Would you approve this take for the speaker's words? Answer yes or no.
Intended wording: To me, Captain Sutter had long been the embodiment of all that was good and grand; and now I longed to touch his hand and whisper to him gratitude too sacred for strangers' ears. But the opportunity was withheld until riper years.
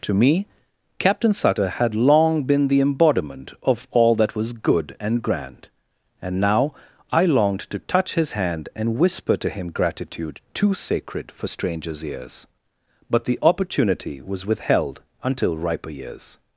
yes